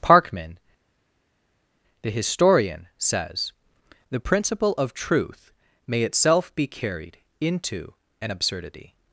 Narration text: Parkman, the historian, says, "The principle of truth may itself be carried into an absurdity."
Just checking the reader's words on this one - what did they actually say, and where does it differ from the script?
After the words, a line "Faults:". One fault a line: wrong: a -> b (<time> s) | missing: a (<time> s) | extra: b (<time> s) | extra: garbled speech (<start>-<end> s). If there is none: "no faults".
Parkman, the historian, says, "The principle of truth may itself be carried into an absurdity."
Faults:
no faults